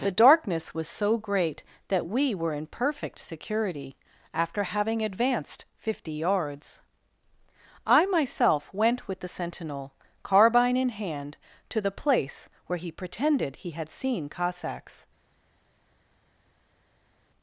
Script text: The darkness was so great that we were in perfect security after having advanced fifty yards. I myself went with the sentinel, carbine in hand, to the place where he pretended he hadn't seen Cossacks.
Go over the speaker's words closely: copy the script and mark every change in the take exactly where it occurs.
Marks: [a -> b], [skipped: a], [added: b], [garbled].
The darkness was so great that we were in perfect security after having advanced fifty yards. I myself went with the sentinel, carbine in hand, to the place where he pretended he [hadn't -> had] seen Cossacks.